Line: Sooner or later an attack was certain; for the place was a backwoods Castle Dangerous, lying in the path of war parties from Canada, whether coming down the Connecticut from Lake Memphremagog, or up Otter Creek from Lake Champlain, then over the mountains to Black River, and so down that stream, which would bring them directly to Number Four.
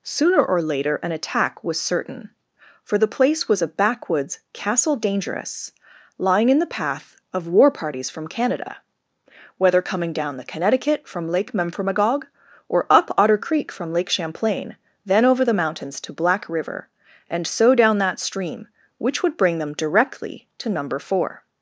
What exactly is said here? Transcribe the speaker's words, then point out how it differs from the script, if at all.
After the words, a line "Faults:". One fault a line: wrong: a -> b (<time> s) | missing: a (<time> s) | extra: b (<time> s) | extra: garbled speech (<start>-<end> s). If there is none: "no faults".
Sooner or later an attack was certain; for the place was a backwoods Castle Dangerous, lying in the path of war parties from Canada, whether coming down the Connecticut from Lake Memphremagog, or up Otter Creek from Lake Champlain, then over the mountains to Black River, and so down that stream, which would bring them directly to Number Four.
Faults:
no faults